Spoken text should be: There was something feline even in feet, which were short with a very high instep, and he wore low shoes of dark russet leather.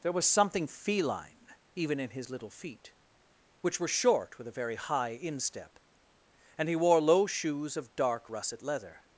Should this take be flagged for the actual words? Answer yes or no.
yes